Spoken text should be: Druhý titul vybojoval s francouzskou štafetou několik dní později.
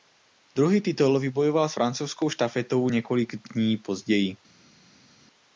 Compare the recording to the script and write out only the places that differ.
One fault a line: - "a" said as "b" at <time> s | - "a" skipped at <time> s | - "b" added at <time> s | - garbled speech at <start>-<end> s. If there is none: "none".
none